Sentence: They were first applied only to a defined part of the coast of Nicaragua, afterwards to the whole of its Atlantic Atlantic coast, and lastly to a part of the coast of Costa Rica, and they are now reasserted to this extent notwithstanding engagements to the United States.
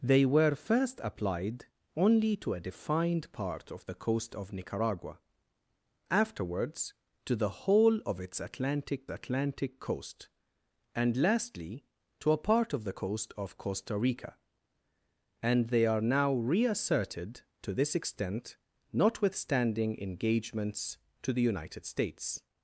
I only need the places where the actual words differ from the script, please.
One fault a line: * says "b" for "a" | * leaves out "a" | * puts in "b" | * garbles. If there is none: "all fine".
all fine